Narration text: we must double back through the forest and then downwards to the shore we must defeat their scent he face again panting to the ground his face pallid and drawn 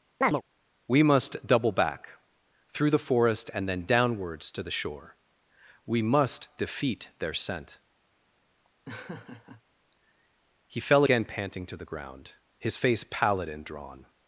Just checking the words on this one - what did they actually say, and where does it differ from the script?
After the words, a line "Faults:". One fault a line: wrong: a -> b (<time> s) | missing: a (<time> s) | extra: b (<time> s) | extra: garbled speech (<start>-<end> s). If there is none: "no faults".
we must double back through the forest and then downwards to the shore we must defeat their scent he fell again panting to the ground his face pallid and drawn
Faults:
wrong: face -> fell (10.8 s)